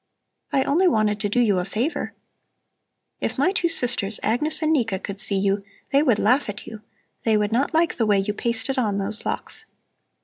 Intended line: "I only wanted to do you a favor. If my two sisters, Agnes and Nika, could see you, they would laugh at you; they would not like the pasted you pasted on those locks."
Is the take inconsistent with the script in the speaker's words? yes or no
yes